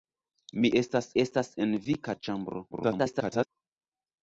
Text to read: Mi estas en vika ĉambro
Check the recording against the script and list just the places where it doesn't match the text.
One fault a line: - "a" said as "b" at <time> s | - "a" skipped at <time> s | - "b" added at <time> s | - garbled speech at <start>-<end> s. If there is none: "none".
- "estas" added at 1.2 s
- garbled speech at 2.7-3.5 s